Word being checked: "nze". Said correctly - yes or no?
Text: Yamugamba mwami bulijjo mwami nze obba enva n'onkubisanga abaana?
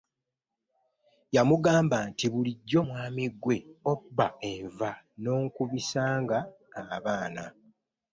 no